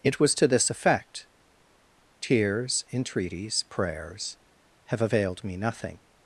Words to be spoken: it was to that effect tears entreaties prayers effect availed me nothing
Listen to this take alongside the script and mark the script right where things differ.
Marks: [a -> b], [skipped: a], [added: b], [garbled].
it was to [that -> this] effect tears entreaties prayers [effect -> have] availed me nothing